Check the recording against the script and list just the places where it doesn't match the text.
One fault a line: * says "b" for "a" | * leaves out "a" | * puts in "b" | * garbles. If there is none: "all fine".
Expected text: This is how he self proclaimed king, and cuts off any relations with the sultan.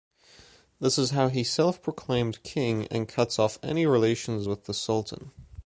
all fine